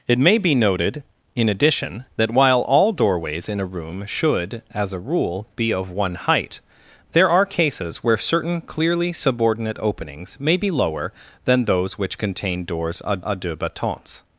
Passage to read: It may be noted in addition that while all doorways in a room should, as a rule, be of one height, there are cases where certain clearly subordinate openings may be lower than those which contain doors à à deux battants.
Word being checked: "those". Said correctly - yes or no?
yes